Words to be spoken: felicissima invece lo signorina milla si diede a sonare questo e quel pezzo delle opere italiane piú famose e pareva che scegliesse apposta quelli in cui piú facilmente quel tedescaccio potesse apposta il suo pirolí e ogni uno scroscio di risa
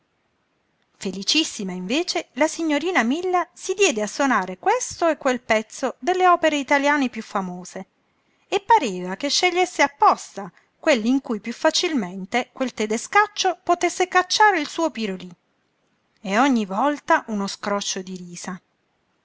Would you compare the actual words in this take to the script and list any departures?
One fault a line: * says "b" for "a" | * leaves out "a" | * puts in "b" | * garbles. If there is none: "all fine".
* says "la" for "lo"
* says "cacciare" for "apposta"
* puts in "volta"